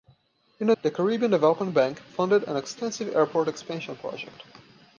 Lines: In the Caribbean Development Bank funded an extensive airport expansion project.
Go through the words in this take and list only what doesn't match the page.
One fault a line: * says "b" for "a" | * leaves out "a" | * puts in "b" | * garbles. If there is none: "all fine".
all fine